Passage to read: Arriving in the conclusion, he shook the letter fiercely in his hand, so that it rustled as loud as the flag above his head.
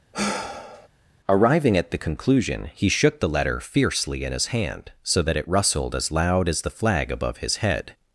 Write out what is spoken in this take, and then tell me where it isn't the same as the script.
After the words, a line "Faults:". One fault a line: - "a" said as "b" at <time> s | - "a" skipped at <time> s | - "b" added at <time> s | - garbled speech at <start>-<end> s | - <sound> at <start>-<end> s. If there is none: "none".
Arriving at the conclusion, he shook the letter fiercely in his hand, so that it rustled as loud as the flag above his head.
Faults:
- sigh at 0.1-0.9 s
- "in" said as "at" at 1.8 s